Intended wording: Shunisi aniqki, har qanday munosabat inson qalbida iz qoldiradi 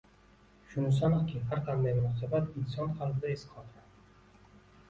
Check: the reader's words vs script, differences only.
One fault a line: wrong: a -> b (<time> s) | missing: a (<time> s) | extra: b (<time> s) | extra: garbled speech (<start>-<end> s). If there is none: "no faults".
no faults